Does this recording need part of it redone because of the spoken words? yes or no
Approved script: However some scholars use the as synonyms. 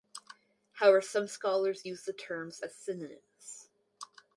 yes